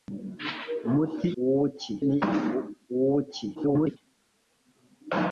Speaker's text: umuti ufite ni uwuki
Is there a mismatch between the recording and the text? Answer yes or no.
yes